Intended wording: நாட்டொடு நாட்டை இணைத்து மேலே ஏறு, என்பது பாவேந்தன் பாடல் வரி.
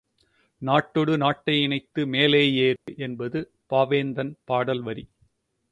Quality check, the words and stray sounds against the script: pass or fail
fail